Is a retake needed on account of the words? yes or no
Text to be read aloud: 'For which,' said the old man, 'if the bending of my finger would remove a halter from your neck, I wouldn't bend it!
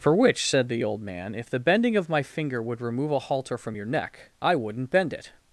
no